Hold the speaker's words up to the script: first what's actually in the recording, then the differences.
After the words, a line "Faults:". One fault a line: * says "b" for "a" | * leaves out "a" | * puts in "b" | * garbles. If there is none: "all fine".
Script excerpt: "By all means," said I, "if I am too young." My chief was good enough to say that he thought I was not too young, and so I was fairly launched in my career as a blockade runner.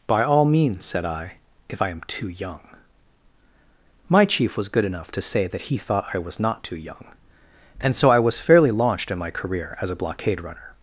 "By all means," said I, "if I am too young." My chief was good enough to say that he thought I was not too young, and so I was fairly launched in my career as a blockade runner.
Faults:
all fine